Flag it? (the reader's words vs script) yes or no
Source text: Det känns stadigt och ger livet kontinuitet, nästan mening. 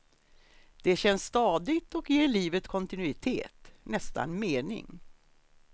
no